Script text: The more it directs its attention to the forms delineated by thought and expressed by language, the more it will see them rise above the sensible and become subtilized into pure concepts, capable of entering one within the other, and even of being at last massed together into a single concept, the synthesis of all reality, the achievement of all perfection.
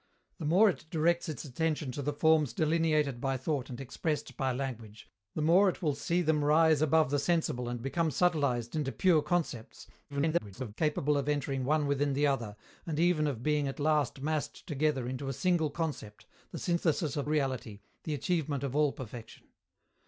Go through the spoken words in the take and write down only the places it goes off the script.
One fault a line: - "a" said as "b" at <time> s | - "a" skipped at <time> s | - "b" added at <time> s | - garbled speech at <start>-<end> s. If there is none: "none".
- garbled speech at 10.1-10.7 s
- "all" skipped at 17.3 s